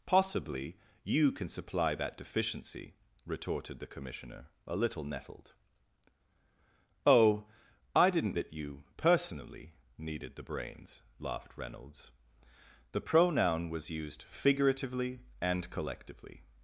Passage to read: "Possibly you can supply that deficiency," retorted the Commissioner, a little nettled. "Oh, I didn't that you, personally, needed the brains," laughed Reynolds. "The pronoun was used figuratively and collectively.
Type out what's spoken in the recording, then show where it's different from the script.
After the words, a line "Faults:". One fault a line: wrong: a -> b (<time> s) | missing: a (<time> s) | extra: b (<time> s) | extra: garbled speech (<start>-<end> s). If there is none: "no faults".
"Possibly you can supply that deficiency," retorted the Commissioner, a little nettled. "Oh, I didn't that you, personally, needed the brains," laughed Reynolds. "The pronoun was used figuratively and collectively.
Faults:
no faults